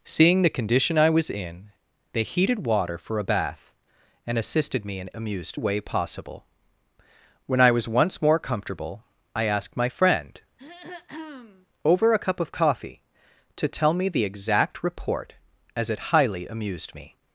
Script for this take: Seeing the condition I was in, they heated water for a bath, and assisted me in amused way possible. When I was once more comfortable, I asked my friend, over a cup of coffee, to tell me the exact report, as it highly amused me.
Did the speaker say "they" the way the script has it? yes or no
yes